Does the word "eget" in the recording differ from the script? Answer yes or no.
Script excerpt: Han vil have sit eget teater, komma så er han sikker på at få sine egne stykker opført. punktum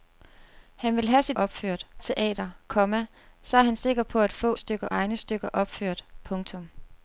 yes